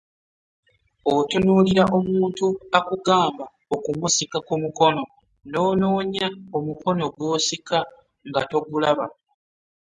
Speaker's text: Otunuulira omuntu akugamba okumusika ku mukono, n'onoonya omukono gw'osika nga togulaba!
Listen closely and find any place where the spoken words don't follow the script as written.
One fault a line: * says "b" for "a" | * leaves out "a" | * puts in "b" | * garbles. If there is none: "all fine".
all fine